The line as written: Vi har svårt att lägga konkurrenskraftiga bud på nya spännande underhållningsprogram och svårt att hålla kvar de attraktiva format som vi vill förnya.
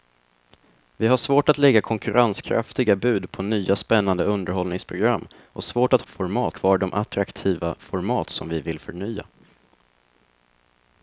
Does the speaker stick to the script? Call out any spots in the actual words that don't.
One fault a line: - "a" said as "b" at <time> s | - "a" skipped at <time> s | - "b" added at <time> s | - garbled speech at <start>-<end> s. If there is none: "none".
- "hålla" said as "format" at 6.1 s